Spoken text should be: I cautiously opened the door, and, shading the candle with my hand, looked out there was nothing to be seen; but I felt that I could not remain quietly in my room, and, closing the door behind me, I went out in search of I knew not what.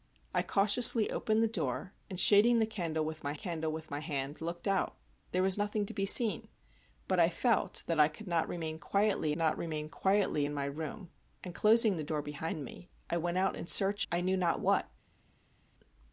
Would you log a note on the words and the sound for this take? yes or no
yes